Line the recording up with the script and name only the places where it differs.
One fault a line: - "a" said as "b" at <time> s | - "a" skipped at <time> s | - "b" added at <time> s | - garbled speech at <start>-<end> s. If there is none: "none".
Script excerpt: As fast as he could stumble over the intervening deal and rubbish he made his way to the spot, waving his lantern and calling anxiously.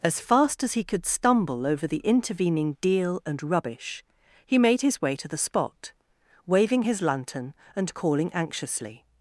none